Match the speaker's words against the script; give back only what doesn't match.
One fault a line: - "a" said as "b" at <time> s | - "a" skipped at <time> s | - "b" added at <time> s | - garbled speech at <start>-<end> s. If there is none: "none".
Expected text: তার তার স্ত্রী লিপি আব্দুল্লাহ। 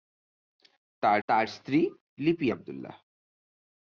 none